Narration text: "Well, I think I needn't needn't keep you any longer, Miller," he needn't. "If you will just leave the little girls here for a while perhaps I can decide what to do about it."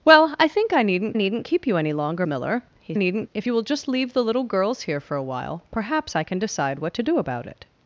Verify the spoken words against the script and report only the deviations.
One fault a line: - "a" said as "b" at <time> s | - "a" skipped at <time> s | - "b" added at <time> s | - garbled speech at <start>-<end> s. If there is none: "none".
none